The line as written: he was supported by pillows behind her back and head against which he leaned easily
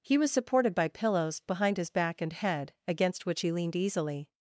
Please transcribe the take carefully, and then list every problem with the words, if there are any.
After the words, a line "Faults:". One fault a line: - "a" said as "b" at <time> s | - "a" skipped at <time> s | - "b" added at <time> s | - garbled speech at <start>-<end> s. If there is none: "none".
he was supported by pillows behind his back and head against which he leaned easily
Faults:
- "her" said as "his" at 1.8 s